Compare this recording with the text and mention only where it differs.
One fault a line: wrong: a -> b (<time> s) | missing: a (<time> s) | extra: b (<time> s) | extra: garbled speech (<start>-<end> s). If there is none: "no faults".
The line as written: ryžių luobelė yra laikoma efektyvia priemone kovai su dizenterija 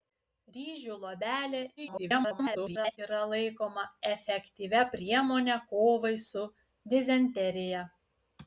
extra: garbled speech (1.8-3.0 s)